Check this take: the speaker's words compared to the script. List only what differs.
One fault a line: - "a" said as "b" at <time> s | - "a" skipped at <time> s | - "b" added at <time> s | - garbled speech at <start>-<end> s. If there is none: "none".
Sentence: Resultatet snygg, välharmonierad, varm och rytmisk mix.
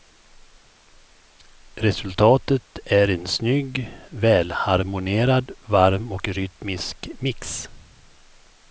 - "är en" added at 2.9 s